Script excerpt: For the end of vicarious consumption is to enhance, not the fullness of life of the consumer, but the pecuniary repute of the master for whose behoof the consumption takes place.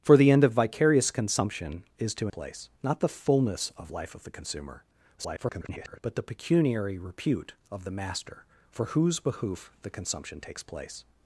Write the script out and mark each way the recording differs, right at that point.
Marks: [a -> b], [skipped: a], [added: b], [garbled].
For the end of vicarious consumption is to [enhance, -> place] not the fullness of life of the consumer, [garbled] but the pecuniary repute of the master for whose behoof the consumption takes place.